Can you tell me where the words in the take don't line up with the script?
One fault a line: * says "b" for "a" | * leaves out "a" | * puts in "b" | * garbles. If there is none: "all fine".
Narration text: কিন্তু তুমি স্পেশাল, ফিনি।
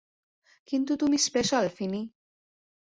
all fine